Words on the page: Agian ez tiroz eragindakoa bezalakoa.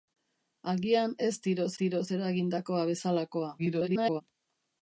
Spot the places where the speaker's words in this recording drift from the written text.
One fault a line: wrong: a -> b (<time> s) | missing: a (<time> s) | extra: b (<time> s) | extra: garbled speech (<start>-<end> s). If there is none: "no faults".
extra: tiroz (1.8 s)
extra: garbled speech (3.6-4.2 s)